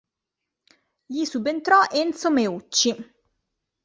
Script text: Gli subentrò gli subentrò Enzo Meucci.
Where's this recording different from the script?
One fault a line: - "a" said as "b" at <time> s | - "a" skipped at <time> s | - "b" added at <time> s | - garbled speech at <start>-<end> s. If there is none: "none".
- "gli subentrò" skipped at 1.8 s